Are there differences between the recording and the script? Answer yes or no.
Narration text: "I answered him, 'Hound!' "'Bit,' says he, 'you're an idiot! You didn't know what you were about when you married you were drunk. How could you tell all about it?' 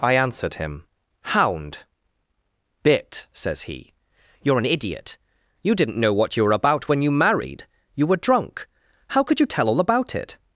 no